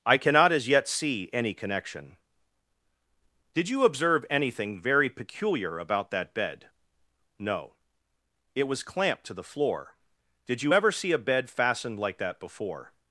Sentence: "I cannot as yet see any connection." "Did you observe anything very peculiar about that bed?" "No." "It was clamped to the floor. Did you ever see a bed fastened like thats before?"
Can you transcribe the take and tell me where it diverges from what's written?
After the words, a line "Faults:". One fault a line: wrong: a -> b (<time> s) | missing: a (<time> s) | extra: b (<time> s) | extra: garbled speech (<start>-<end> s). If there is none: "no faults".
"I cannot as yet see any connection." "Did you observe anything very peculiar about that bed?" "No." "It was clamped to the floor. Did you ever see a bed fastened like that before?"
Faults:
wrong: thats -> that (12.2 s)